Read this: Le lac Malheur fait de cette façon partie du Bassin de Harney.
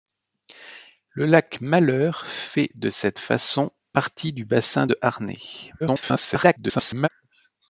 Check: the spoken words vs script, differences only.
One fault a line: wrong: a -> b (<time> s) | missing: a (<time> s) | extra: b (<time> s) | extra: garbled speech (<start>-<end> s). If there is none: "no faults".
extra: garbled speech (5.8-7.1 s)